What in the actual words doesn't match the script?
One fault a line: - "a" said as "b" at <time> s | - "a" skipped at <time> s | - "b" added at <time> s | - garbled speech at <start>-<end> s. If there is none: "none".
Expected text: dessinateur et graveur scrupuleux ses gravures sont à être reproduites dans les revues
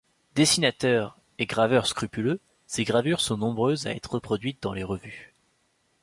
- "nombreuses" added at 3.4 s